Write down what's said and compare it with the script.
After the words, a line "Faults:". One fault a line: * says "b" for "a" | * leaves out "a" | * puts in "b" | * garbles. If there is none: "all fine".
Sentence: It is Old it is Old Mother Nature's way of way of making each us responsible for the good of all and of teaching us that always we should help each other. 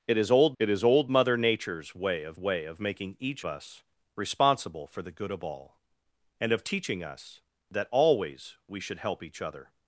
It is Old it is Old Mother Nature's way of way of making each us responsible for the good of all and of teaching us that always we should help each other.
Faults:
all fine